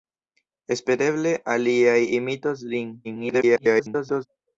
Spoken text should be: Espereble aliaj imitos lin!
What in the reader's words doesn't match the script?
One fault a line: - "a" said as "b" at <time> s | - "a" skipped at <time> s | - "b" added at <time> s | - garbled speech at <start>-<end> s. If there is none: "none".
- garbled speech at 3.0-4.3 s